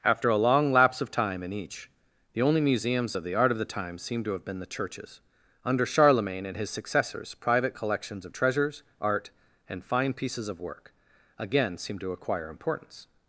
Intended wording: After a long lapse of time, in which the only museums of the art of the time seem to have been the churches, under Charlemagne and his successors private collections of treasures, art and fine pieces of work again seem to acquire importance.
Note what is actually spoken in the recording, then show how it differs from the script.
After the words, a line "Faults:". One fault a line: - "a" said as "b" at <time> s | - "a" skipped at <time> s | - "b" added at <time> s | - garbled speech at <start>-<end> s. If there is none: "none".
After a long lapse of time, in each the only museums of the art of the time seem to have been the churches, under Charlemagne and his successors private collections of treasures, art and fine pieces of work again seem to acquire importance.
Faults:
- "which" said as "each" at 1.5 s